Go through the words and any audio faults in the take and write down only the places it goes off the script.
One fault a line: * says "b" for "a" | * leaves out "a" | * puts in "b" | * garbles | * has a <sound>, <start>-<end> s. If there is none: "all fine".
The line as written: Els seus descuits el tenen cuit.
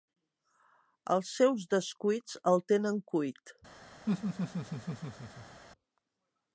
* has a laugh, 4.1-5.6 s